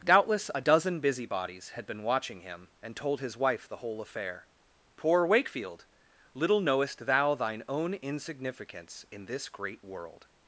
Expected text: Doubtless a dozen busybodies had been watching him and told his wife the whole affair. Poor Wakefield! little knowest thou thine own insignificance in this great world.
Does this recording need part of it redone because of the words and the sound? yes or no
no